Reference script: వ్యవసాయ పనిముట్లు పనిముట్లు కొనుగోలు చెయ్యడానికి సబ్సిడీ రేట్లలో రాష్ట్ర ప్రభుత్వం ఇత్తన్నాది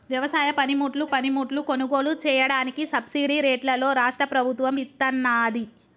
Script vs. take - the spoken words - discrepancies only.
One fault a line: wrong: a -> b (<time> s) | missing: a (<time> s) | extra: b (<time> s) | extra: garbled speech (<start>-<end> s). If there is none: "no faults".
no faults